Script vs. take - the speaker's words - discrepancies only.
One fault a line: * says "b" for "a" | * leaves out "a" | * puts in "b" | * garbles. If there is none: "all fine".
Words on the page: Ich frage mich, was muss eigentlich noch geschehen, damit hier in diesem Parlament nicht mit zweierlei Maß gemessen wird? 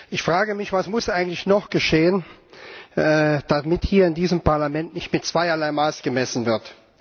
all fine